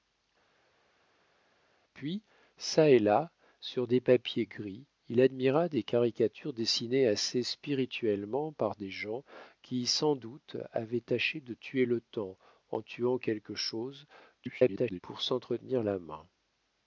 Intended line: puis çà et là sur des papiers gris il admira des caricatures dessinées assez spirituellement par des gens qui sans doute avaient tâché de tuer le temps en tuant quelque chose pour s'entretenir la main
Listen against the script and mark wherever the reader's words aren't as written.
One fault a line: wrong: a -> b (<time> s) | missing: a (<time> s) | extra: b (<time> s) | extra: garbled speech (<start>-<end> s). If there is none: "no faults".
extra: garbled speech (14.4-15.0 s)